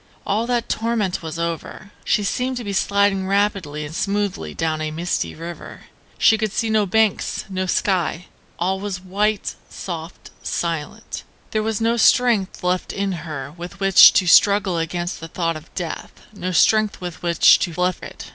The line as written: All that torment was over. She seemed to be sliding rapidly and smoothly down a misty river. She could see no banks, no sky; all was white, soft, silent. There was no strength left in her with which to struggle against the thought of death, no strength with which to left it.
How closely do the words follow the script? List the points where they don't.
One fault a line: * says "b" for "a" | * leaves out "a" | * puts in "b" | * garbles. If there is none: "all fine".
all fine